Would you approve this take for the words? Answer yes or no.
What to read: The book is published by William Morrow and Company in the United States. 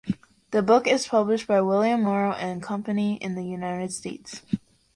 yes